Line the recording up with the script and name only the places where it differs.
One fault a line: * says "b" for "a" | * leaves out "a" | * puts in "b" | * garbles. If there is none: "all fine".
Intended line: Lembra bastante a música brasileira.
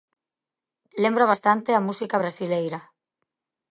all fine